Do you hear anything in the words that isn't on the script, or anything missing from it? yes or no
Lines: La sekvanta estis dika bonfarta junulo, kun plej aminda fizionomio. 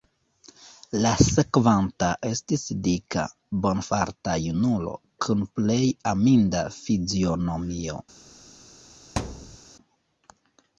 no